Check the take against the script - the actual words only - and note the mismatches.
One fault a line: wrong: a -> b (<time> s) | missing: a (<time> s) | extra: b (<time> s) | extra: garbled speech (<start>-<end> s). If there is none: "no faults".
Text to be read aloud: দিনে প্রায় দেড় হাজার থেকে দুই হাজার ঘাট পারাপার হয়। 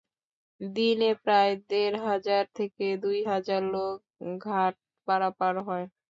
extra: লোক (3.7 s)